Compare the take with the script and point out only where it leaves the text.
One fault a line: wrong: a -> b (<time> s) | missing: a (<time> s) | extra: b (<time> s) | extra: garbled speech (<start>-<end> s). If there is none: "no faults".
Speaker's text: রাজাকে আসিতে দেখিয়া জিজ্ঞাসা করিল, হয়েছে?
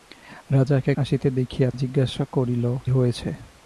no faults